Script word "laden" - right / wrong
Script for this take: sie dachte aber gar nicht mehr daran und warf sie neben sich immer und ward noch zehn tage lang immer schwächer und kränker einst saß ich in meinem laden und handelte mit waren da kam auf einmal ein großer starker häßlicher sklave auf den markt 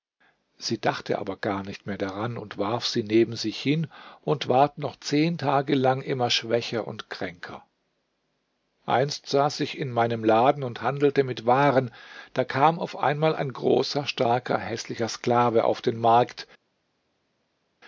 right